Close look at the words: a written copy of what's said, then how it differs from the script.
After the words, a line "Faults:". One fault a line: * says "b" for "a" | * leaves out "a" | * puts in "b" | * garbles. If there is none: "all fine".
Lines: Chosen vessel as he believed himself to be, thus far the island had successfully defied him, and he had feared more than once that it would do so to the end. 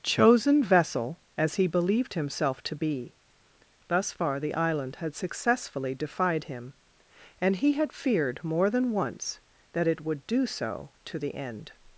Chosen vessel as he believed himself to be, thus far the island had successfully defied him, and he had feared more than once that it would do so to the end.
Faults:
all fine